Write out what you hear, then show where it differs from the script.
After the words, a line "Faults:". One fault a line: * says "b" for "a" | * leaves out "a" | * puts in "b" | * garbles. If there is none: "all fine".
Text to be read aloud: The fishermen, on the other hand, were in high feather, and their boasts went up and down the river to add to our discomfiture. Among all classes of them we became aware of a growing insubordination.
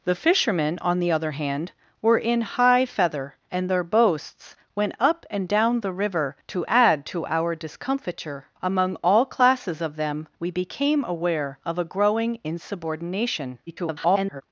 The fishermen, on the other hand, were in high feather, and their boasts went up and down the river to add to our discomfiture. Among all classes of them we became aware of a growing insubordination. [garbled]
Faults:
* garbles